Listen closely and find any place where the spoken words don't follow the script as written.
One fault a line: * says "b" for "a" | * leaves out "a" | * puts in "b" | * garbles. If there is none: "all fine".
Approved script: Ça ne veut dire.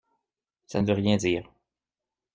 * puts in "rien"